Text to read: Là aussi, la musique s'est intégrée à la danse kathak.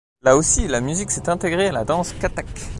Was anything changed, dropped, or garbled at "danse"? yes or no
no